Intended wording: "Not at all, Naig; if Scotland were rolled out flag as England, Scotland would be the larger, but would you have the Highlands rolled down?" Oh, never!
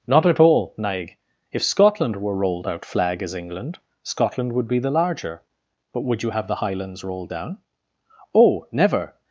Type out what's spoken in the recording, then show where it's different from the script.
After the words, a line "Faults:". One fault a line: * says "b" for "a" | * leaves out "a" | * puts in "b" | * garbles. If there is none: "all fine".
"Not at all, Naig; if Scotland were rolled out flag as England, Scotland would be the larger, but would you have the Highlands rolled down?" Oh, never!
Faults:
all fine